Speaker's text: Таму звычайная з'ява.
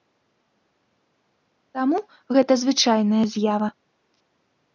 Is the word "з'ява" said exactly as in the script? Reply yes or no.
yes